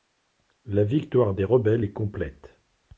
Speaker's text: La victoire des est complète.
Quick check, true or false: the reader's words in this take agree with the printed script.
false